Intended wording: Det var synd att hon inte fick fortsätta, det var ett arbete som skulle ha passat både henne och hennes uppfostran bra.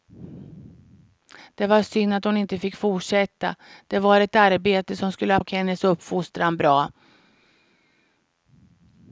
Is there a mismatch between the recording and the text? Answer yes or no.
yes